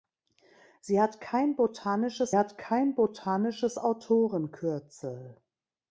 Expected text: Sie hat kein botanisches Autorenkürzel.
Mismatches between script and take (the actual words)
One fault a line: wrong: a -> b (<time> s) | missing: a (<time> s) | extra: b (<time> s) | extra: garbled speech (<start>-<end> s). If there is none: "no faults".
extra: hat kein botanisches (2.3 s)